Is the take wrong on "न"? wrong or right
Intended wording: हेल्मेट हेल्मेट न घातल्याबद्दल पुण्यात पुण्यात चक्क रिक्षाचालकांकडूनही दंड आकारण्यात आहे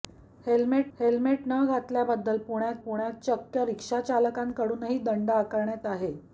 right